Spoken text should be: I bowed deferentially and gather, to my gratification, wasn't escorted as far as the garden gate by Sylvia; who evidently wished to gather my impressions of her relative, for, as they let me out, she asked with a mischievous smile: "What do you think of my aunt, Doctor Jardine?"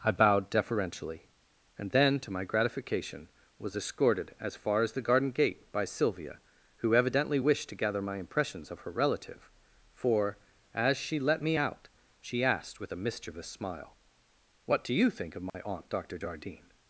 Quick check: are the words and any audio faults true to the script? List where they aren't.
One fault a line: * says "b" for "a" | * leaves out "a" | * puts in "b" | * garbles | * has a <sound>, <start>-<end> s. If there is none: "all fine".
* says "then" for "gather"
* says "was" for "wasn't"
* says "she" for "they"
* has a dropout, 15.5-15.5 s